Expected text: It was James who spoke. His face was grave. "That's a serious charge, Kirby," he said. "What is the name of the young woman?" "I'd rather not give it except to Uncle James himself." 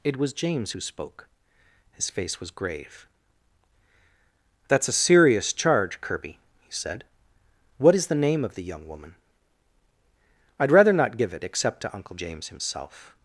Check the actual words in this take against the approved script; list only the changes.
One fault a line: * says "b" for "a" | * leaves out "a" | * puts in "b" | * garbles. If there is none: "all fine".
all fine